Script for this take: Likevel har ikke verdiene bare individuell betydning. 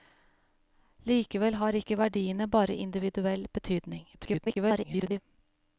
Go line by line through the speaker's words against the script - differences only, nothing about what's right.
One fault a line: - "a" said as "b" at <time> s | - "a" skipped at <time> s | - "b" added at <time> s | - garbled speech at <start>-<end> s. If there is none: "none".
- garbled speech at 4.1-5.2 s